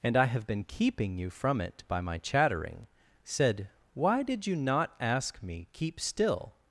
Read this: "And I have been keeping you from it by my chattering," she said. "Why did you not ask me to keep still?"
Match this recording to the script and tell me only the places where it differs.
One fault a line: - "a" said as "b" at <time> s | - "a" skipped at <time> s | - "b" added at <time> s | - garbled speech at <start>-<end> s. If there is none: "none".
- "she" skipped at 2.9 s
- "to" skipped at 5.7 s